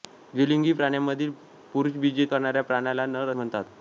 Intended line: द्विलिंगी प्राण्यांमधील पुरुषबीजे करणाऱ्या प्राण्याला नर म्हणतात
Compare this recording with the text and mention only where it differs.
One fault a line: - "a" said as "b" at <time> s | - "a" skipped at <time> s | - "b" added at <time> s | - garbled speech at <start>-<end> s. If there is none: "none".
none